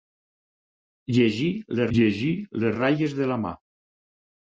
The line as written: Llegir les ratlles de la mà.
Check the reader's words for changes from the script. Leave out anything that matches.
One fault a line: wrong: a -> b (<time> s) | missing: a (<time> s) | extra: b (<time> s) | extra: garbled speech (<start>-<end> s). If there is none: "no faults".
extra: llegir les (2.0 s)